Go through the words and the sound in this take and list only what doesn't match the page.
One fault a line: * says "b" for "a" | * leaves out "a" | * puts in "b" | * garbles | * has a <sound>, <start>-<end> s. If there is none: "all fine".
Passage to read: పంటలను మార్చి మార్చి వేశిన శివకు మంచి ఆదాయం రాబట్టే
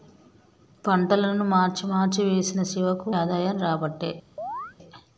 * leaves out "మంచి"
* has a chirp, 4.4-4.8 s